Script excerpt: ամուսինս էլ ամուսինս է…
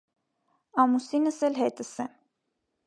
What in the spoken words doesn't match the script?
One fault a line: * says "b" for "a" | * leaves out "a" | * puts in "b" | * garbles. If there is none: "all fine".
* says "հետս" for "ամուսինս"